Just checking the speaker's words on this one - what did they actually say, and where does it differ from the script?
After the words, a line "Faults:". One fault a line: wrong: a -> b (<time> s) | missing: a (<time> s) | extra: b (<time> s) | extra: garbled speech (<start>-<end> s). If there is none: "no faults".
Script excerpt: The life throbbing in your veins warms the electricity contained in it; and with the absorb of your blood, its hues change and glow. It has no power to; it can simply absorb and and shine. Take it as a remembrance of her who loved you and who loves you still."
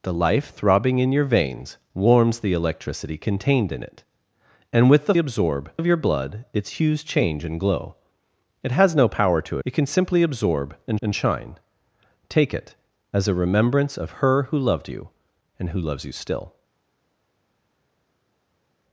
The life throbbing in your veins warms the electricity contained in it; and with the absorb of your blood, its hues change and glow. It has no power to; it can simply absorb and and shine. Take it as a remembrance of her who loved you and who loves you still."
Faults:
no faults